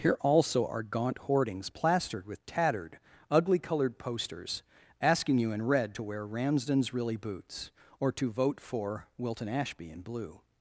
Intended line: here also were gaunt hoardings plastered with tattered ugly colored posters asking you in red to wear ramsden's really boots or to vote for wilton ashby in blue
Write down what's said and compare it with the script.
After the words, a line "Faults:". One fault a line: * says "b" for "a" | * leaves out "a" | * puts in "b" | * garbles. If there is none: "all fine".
here also are gaunt hoardings plastered with tattered ugly colored posters asking you in red to wear ramsden's really boots or to vote for wilton ashby in blue
Faults:
* says "are" for "were"